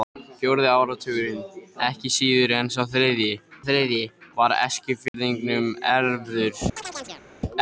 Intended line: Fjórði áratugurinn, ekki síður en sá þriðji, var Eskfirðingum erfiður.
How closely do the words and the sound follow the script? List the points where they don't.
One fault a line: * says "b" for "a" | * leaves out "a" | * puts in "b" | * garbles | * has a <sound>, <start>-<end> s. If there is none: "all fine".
* puts in "þriðji"
* has a dropout, 5.1-5.1 s
* has a chirp, 6.8-7.2 s